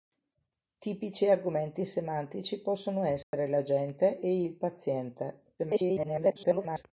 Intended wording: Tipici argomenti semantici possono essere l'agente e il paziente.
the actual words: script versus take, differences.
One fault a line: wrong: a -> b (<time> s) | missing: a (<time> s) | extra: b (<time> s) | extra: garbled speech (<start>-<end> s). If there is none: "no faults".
extra: garbled speech (5.6-6.8 s)